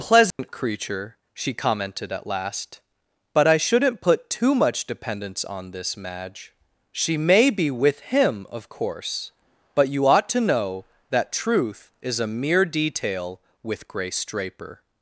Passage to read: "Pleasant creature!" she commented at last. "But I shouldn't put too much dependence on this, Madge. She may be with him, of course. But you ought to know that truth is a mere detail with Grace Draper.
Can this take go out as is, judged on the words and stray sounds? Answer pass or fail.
fail